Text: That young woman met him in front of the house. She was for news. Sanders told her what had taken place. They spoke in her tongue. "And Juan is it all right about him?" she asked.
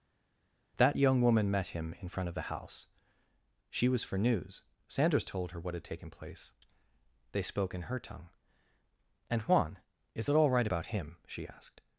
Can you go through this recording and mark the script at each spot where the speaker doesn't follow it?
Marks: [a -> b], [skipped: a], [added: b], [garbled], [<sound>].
That young woman met him in front of the house. She was for news. Sanders told her what had taken place. They spoke in her tongue. "And Juan is it all right about him?" she asked.